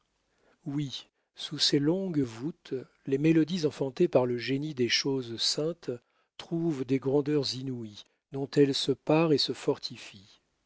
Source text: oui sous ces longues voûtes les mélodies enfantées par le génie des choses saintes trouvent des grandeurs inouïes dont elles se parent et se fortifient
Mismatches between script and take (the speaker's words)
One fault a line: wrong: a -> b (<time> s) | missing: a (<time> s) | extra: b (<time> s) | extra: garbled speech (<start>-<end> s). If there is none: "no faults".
no faults